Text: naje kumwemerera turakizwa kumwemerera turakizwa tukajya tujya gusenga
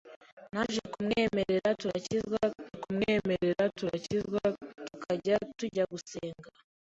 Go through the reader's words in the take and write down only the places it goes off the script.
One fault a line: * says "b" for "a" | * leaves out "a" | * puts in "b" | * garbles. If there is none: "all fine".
all fine